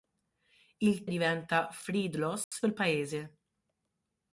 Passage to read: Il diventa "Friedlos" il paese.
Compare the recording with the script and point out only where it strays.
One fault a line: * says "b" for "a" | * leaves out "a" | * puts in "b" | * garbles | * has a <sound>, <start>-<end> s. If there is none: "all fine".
* has a dropout, 2.4-2.5 s